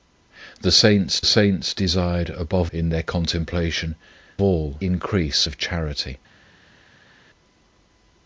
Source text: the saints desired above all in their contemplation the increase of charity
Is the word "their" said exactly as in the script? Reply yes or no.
yes